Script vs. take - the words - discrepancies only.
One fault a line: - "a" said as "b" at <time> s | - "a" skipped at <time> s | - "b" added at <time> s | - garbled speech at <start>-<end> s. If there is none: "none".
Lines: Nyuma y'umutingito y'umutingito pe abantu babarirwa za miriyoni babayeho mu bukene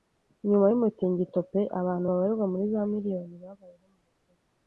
- "y'umutingito" skipped at 1.4 s
- "muri" added at 2.5 s